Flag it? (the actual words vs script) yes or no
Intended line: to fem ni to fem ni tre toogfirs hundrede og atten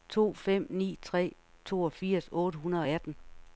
yes